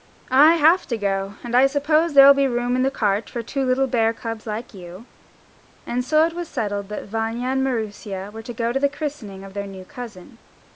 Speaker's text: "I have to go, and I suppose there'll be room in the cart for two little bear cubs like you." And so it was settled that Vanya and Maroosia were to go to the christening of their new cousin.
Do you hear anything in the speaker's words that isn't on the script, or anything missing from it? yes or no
no